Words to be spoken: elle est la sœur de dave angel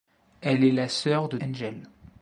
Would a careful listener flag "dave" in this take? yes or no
yes